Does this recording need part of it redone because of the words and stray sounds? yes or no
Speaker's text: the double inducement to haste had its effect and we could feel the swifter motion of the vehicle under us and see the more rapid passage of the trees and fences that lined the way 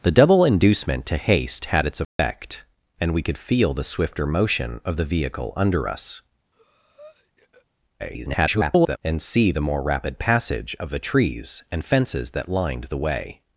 yes